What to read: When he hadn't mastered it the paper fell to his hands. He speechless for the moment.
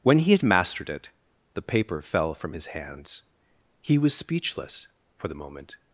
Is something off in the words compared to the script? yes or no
yes